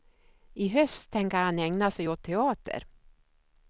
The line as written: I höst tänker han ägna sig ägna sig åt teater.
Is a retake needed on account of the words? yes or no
yes